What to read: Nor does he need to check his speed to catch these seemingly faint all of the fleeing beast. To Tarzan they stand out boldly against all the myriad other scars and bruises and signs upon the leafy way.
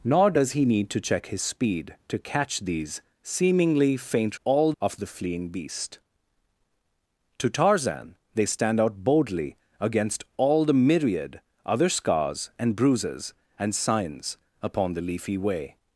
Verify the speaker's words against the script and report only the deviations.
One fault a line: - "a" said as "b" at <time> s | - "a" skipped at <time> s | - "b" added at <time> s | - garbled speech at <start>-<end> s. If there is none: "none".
none